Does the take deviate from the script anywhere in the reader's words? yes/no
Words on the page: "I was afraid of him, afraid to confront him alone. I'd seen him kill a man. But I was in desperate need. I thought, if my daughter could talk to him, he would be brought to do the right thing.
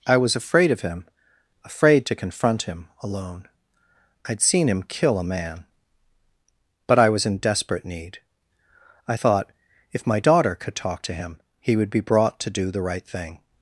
no